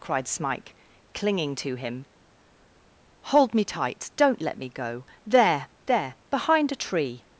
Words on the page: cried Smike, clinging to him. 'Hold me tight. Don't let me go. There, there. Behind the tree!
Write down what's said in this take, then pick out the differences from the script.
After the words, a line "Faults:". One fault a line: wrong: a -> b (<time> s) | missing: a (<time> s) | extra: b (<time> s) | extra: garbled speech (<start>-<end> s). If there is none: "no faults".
cried Smike, clinging to him. 'Hold me tight. Don't let me go. There, there. Behind a tree!
Faults:
wrong: the -> a (6.7 s)